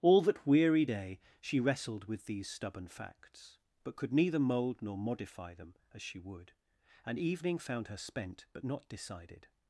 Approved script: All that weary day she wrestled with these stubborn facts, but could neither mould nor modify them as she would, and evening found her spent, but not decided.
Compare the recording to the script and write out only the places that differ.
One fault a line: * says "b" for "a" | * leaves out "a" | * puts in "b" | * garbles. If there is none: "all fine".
all fine